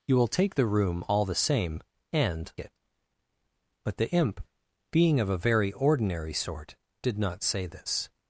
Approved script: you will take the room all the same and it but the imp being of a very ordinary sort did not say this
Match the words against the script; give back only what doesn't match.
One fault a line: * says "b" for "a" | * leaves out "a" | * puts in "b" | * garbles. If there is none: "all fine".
all fine